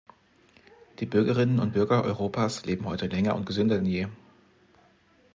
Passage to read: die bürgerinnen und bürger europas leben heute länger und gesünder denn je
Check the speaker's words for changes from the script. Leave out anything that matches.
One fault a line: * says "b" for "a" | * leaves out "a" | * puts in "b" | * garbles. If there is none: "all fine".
all fine